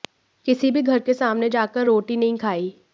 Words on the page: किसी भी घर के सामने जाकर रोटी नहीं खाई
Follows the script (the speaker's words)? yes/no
yes